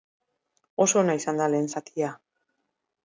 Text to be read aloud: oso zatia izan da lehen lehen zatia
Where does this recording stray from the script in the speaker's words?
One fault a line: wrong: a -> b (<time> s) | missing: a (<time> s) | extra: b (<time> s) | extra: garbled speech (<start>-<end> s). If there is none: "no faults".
wrong: zatia -> ona (1.0 s)
missing: lehen (1.7 s)